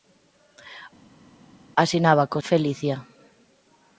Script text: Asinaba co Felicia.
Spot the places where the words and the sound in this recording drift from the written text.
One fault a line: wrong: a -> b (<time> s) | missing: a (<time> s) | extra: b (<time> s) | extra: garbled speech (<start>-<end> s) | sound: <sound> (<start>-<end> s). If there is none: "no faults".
no faults